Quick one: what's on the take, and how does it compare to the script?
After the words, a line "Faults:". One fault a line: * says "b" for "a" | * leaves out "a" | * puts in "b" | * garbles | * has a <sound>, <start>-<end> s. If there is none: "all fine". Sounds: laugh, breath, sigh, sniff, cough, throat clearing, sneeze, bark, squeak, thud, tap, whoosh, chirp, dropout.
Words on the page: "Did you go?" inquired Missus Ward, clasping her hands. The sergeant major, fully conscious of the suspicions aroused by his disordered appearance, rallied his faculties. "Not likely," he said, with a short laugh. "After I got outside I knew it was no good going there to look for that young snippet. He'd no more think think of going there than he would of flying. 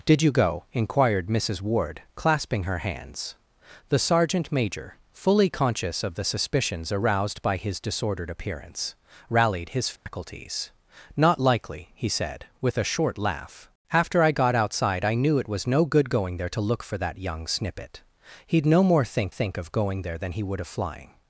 "Did you go?" inquired Missus Ward, clasping her hands. The sergeant major, fully conscious of the suspicions aroused by his disordered appearance, rallied his faculties. "Not likely," he said, with a short laugh. "After I got outside I knew it was no good going there to look for that young snippet. He'd no more think think of going there than he would of flying.
Faults:
* has a dropout, 10.0-10.1 s